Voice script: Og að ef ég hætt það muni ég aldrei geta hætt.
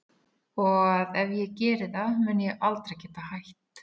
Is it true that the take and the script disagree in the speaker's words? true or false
true